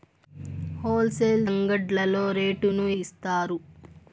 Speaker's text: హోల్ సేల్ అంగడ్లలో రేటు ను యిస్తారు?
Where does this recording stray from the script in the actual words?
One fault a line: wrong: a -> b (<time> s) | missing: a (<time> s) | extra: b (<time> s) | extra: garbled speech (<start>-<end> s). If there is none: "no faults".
no faults